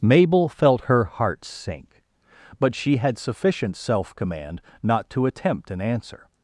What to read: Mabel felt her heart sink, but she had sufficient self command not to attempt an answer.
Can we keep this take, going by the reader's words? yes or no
yes